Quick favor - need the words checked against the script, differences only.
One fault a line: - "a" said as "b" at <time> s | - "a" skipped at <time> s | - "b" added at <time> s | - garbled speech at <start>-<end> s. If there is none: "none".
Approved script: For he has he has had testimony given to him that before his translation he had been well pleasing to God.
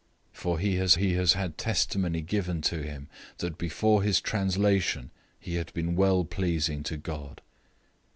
none